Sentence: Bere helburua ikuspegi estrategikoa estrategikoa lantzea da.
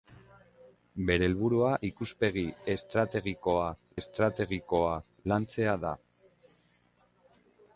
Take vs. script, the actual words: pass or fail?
pass